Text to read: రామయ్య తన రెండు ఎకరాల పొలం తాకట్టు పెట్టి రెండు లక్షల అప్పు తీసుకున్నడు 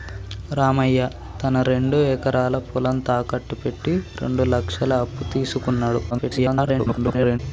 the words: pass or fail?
fail